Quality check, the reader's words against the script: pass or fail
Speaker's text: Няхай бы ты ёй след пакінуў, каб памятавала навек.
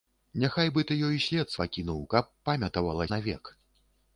pass